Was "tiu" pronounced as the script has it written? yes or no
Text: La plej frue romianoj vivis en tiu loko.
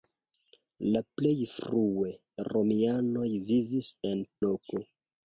no